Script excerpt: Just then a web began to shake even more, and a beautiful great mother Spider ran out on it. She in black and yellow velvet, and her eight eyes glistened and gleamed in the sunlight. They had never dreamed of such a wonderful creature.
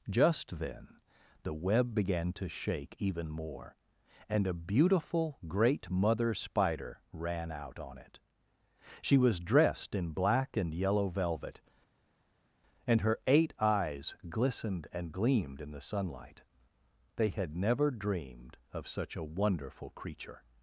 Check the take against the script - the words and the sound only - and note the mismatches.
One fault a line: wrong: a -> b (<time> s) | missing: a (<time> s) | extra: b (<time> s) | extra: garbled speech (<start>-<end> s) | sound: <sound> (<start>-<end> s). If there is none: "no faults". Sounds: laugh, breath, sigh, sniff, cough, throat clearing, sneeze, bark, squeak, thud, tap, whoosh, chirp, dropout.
wrong: a -> the (1.4 s)
extra: was dressed (9.2 s)